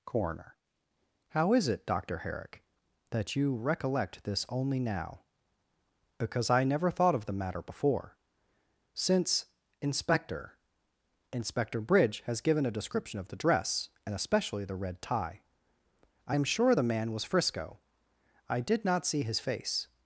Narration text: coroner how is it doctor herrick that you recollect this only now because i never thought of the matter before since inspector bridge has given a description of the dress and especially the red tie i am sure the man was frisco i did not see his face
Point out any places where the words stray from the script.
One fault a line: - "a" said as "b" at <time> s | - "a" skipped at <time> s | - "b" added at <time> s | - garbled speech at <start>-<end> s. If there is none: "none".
- "inspector" added at 11.3 s